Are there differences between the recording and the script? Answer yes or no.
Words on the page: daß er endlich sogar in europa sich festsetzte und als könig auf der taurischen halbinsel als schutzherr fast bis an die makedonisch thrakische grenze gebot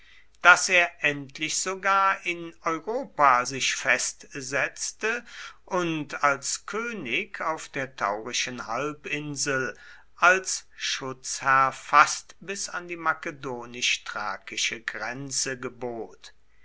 no